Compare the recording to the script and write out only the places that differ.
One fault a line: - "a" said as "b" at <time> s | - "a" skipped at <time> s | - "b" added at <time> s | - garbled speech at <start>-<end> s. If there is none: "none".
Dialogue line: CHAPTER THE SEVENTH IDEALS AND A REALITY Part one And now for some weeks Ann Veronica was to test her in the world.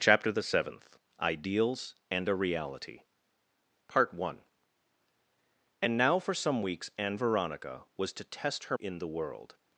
none